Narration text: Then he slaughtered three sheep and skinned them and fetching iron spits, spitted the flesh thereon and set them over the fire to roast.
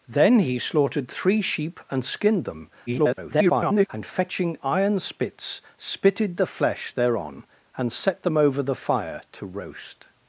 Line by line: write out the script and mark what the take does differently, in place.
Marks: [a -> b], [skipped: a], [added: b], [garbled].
Then he slaughtered three sheep and skinned them [garbled] and fetching iron spits, spitted the flesh thereon and set them over the fire to roast.